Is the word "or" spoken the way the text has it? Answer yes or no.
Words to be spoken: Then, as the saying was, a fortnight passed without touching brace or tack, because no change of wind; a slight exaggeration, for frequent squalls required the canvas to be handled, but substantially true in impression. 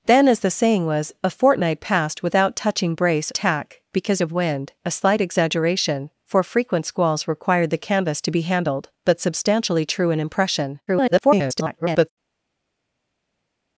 no